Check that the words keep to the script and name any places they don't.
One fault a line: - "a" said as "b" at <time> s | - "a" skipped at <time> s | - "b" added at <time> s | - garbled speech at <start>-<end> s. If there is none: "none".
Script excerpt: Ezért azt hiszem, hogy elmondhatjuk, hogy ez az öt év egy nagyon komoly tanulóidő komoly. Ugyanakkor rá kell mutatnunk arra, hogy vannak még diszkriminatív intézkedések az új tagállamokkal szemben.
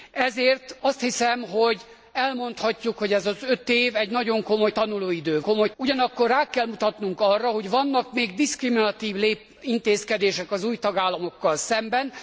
none